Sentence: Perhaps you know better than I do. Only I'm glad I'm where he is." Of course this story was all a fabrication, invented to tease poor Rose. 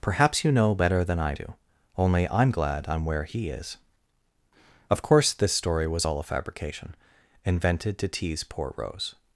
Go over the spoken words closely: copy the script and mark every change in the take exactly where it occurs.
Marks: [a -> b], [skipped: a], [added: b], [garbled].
Perhaps you know better than I do. Only I'm glad I'm where he is." Of course this story was all a fabrication, invented to tease poor Rose.